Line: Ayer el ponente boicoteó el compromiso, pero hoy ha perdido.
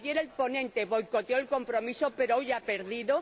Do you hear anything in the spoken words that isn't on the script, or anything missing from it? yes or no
no